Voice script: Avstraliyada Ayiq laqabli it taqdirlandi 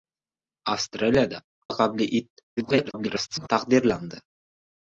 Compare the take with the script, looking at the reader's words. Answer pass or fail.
fail